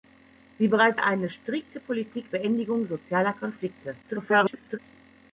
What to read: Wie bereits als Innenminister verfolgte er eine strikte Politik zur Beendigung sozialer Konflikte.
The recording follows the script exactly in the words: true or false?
false